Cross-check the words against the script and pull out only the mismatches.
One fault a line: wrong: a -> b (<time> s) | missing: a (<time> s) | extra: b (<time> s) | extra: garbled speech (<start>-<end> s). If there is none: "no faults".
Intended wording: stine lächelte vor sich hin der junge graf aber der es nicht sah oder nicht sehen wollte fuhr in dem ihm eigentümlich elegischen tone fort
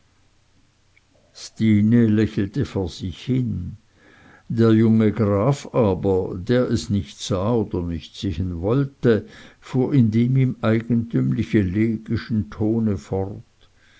no faults